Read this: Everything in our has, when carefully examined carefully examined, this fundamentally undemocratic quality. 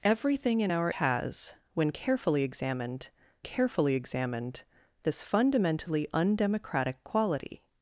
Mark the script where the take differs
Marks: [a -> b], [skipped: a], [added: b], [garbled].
Everything in our has, when carefully examined carefully examined, this fundamentally undemocratic quality.